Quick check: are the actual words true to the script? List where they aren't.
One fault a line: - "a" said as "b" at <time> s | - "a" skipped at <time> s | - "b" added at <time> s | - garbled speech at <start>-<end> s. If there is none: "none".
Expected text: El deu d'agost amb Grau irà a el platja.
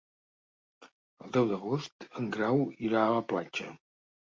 - "amb" said as "en" at 2.2 s
- "el" said as "la" at 3.2 s